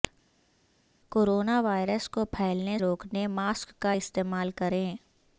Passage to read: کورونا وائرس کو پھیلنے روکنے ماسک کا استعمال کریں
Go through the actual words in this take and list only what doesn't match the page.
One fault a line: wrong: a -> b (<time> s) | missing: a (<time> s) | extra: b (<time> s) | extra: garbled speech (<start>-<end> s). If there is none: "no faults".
no faults